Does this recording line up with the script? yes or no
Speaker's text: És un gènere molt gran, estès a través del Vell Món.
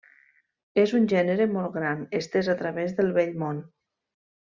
yes